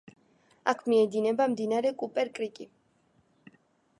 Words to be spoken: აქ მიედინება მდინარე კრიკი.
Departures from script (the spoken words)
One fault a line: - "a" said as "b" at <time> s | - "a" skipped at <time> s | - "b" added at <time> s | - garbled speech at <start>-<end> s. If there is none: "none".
- "კუპერ" added at 2.0 s